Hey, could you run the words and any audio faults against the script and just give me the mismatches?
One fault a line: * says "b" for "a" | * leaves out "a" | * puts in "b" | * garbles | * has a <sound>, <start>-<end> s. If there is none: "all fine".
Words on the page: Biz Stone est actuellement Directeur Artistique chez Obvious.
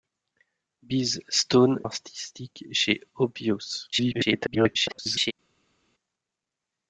* leaves out "est actuellement Directeur"
* garbles